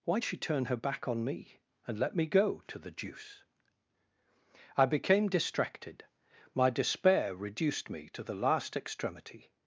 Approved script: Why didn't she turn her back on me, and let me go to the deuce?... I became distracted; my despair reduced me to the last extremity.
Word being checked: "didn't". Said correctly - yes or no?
no